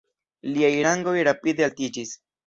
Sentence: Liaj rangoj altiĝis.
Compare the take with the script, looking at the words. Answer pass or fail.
fail